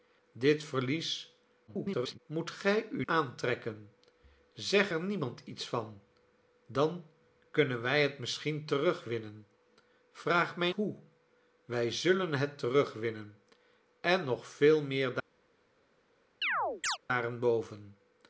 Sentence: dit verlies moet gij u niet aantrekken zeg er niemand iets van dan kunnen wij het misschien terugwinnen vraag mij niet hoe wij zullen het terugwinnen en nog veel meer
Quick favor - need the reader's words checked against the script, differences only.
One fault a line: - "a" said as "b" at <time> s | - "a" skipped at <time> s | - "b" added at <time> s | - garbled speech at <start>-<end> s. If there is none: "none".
- garbled speech at 1.7-2.2 s
- "niet" skipped at 3.0 s
- "niet" skipped at 10.7 s